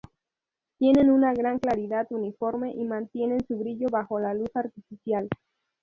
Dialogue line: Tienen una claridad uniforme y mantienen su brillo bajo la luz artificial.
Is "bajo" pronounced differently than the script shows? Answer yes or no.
no